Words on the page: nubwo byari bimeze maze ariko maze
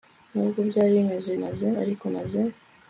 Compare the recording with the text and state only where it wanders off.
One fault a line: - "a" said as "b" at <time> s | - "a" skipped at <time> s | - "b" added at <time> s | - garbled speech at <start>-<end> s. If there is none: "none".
none